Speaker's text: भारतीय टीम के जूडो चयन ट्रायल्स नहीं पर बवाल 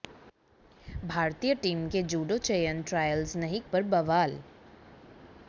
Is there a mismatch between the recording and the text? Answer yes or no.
no